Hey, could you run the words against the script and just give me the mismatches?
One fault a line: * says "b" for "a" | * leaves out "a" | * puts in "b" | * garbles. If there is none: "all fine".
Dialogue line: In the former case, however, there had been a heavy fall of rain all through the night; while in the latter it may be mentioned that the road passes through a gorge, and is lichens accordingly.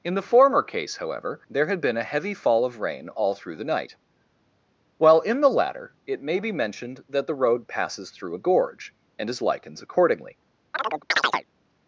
all fine